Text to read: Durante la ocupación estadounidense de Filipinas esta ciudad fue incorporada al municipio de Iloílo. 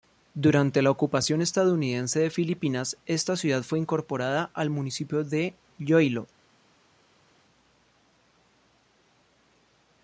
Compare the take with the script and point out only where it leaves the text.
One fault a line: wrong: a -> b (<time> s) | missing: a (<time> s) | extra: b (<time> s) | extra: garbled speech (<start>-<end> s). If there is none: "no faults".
no faults